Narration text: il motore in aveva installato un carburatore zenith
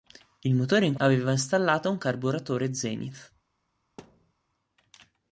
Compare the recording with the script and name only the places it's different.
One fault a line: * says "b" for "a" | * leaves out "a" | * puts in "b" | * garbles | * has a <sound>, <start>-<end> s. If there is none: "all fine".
* has a thud, 4.0-4.3 s